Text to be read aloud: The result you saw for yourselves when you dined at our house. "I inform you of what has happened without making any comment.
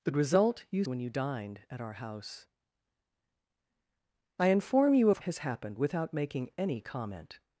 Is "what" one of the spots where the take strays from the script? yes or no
yes